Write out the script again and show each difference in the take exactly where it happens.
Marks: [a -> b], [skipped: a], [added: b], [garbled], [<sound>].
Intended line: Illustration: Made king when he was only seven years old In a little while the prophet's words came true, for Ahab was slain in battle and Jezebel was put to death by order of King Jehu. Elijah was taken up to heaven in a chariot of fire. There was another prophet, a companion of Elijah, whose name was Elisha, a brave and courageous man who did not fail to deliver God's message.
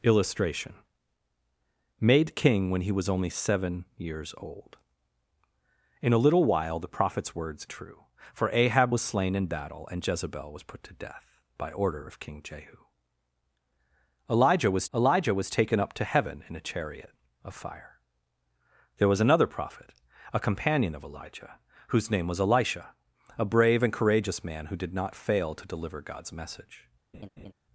Illustration: Made king when he was only seven years old In a little while the prophet's words [skipped: came] true, for Ahab was slain in battle and Jezebel was put to death by order of King Jehu. Elijah was [added: elijah was] taken up to heaven in a chariot of fire. There was another prophet, a companion of Elijah, whose name was Elisha, a brave and courageous man who did not fail to deliver God's message. [laugh]